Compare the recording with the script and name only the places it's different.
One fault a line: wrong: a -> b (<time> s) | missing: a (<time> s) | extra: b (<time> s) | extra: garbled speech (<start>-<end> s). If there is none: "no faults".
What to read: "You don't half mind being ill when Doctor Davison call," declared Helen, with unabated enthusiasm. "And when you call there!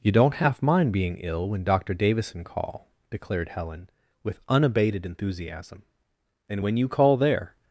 no faults